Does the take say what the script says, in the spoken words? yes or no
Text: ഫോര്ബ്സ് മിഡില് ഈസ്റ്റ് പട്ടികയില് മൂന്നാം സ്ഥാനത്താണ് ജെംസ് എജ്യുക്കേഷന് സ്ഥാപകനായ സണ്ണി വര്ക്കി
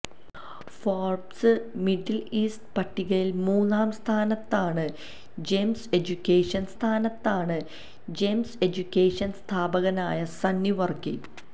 no